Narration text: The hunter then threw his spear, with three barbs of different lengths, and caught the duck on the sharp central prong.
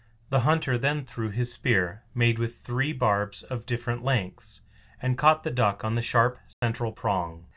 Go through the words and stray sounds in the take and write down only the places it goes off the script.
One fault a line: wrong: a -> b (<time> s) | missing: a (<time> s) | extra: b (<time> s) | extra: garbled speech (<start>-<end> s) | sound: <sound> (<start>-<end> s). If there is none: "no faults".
extra: made (2.1 s)
sound: dropout (6.5-6.6 s)